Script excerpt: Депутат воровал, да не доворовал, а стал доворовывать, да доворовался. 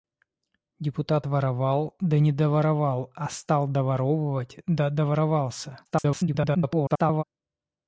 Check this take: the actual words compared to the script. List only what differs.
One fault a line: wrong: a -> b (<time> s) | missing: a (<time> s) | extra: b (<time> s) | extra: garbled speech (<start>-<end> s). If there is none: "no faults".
extra: garbled speech (5.9-7.2 s)